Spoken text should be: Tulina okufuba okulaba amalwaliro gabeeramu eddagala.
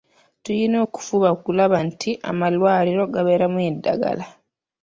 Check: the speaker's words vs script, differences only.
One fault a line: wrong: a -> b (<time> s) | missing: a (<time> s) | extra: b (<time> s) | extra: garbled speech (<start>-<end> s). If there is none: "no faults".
extra: nti (1.9 s)